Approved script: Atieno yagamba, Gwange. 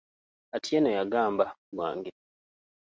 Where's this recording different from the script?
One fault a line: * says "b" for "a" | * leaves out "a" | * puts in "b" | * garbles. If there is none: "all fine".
all fine